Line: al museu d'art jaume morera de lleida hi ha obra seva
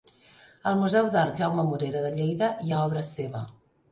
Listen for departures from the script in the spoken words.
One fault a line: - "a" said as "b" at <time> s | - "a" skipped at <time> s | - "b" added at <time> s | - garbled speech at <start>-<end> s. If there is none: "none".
none